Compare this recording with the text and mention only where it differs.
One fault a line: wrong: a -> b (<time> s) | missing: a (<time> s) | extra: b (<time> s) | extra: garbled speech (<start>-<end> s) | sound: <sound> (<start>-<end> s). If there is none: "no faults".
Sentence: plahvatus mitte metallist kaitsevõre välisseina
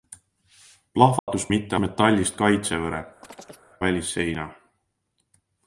sound: dropout (1.2-1.3 s)
sound: chirp (3.2-3.7 s)